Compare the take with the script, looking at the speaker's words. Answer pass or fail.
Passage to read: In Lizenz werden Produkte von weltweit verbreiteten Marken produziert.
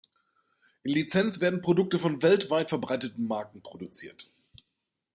pass